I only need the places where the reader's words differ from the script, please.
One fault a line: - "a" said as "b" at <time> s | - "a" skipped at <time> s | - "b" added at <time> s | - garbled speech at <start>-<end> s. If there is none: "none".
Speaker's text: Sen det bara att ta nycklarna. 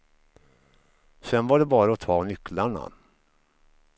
- "var" added at 1.5 s